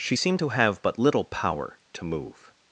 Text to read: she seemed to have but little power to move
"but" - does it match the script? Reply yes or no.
yes